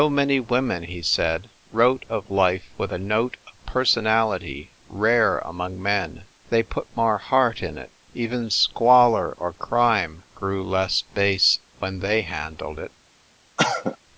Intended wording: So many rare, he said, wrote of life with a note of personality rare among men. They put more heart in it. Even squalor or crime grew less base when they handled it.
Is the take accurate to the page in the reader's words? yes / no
no